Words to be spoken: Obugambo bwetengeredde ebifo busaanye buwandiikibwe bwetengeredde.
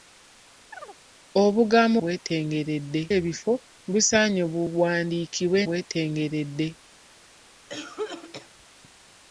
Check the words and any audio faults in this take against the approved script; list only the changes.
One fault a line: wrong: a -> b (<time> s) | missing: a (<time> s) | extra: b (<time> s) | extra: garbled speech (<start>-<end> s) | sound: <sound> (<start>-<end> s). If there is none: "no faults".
sound: chirp (0.7-1.0 s)
sound: cough (7.7-8.5 s)